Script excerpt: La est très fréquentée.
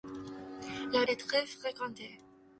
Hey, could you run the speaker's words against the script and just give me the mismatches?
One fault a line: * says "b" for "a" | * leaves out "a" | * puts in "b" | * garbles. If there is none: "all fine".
all fine